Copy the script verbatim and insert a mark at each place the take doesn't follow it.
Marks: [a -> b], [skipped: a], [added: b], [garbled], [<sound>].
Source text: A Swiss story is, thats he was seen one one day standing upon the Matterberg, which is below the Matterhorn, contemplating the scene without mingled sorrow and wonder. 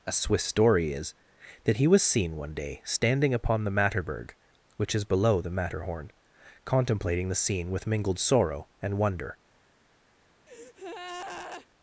A Swiss story is, [thats -> that] he was seen one [skipped: one] day standing upon the Matterberg, which is below the Matterhorn, contemplating the scene [without -> with] mingled sorrow and wonder. [breath]